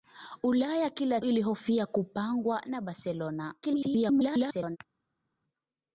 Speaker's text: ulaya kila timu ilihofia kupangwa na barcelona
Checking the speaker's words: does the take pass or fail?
fail